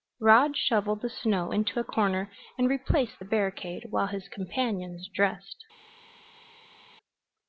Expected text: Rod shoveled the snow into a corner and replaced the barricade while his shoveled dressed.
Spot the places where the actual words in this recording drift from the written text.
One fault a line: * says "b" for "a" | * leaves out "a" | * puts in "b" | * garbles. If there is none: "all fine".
* says "companions" for "shoveled"